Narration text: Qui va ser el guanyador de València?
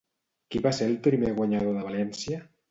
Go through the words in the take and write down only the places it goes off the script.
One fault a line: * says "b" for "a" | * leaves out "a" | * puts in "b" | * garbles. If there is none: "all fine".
* puts in "primer"